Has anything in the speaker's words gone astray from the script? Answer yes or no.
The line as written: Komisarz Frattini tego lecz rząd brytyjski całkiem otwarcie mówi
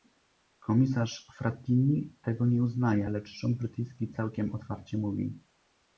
yes